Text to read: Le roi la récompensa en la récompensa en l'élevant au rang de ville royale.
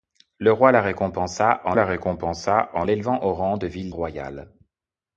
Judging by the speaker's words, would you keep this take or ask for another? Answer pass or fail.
pass